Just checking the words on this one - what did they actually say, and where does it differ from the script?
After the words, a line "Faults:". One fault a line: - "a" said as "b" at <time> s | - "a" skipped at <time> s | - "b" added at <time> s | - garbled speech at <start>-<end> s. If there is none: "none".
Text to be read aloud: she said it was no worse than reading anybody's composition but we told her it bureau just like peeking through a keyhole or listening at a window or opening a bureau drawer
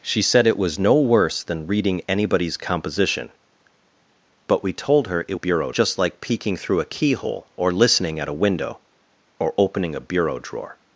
she said it was no worse than reading anybody's composition but we told her it bureau just like peeking through a keyhole or listening at a window or opening a bureau drawer
Faults:
none